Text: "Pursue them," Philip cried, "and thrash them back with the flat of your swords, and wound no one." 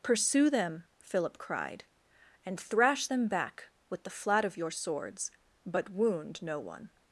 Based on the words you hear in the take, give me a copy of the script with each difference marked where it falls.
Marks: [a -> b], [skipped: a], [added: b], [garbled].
"Pursue them," Philip cried, "and thrash them back with the flat of your swords, [and -> but] wound no one."